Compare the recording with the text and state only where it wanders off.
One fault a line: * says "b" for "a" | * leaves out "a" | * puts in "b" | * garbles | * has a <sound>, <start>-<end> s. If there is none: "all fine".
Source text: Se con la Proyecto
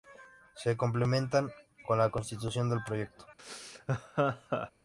* puts in "complementan"
* puts in "Constitución del"
* has a laugh, 3.4-4.7 s